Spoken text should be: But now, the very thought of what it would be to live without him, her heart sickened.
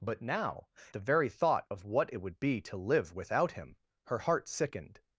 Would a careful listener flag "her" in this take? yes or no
no